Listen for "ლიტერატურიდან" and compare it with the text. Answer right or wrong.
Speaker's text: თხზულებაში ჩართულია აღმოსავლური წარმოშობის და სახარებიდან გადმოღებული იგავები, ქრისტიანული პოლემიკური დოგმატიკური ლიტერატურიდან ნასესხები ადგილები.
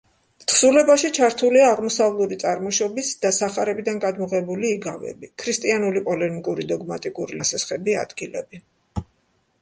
wrong